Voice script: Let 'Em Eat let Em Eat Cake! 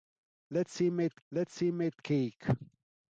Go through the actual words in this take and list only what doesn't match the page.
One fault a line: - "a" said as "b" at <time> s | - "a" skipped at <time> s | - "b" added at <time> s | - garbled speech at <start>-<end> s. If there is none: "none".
none